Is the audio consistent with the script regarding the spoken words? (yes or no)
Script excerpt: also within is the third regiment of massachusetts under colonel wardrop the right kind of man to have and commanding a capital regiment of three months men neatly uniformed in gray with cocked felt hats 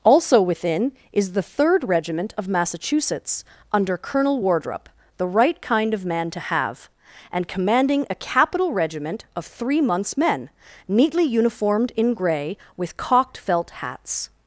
yes